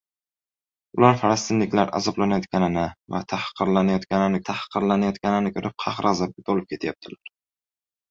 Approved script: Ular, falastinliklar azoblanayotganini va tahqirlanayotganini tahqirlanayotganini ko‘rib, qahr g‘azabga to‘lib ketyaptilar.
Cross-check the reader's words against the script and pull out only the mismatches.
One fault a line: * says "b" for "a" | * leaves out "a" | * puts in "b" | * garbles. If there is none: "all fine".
all fine